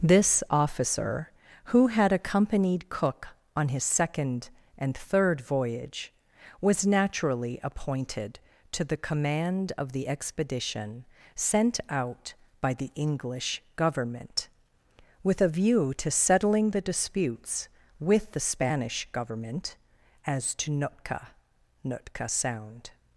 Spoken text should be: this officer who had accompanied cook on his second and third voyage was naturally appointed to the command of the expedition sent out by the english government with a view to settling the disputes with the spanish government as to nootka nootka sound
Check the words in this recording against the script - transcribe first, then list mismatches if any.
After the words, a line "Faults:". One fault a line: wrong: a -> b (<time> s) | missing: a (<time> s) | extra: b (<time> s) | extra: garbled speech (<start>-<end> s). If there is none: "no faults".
this officer who had accompanied cook on his second and third voyage was naturally appointed to the command of the expedition sent out by the english government with a view to settling the disputes with the spanish government as to nootka nootka sound
Faults:
no faults